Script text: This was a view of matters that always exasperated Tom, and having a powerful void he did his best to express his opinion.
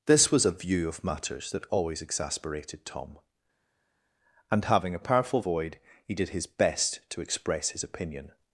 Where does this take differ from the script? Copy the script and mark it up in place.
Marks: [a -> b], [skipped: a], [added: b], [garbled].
This was a view of matters that always exasperated Tom, and having a powerful void he did his best to express his opinion.